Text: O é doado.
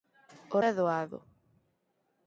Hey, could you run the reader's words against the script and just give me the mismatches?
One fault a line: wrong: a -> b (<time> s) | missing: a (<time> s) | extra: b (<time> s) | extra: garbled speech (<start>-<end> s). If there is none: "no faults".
no faults